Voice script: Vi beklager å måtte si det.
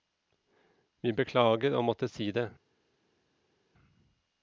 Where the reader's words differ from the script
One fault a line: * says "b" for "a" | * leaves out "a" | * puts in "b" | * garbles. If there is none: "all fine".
all fine